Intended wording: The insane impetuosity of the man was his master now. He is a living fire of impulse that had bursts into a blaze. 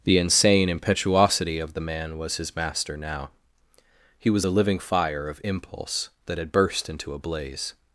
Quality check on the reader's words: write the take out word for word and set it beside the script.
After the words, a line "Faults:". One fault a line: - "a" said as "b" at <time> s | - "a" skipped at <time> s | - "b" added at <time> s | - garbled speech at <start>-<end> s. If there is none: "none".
The insane impetuosity of the man was his master now. He was a living fire of impulse that had burst into a blaze.
Faults:
- "is" said as "was" at 4.3 s
- "bursts" said as "burst" at 6.5 s